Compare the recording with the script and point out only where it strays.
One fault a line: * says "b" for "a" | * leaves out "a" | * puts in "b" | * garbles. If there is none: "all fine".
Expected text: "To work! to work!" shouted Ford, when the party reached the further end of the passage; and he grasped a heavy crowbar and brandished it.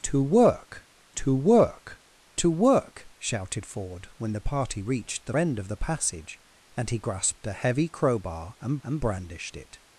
* puts in "to work"
* leaves out "further"
* puts in "and"